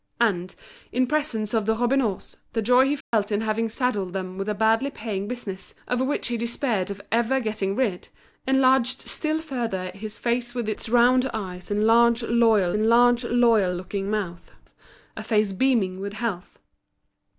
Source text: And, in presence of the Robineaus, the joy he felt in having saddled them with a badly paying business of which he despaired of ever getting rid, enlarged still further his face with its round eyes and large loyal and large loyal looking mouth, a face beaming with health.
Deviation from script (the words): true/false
false